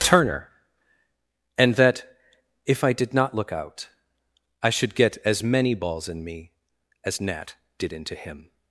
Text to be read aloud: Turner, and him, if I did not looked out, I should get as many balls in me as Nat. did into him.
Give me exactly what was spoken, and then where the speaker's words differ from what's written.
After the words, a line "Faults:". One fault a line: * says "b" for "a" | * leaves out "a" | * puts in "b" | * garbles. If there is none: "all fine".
Turner, and that, if I did not look out, I should get as many balls in me as Nat. did into him.
Faults:
* says "that" for "him"
* says "look" for "looked"